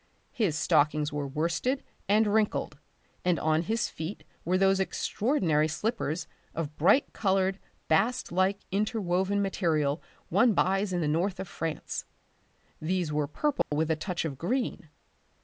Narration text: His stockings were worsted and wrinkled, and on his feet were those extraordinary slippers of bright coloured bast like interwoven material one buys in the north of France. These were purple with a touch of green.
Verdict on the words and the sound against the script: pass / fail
fail